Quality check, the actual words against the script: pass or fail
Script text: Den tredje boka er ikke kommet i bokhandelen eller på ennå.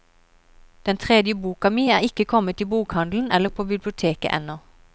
fail